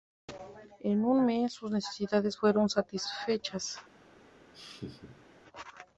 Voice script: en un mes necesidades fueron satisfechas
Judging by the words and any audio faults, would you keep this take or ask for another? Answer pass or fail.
fail